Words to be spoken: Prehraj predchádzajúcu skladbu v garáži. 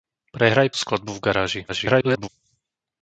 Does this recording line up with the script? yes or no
no